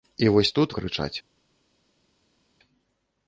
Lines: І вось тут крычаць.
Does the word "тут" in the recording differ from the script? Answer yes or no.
no